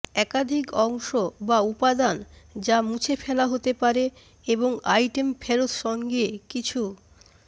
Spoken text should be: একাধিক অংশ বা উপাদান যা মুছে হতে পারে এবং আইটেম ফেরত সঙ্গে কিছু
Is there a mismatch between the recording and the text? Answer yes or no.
yes